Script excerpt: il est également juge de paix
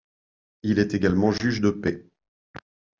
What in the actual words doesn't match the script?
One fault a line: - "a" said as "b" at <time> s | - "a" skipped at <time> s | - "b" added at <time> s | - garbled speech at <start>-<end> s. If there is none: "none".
none